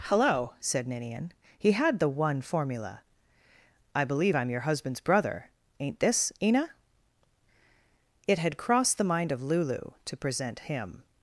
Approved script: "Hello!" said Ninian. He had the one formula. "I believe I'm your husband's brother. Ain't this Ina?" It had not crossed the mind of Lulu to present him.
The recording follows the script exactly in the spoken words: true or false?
false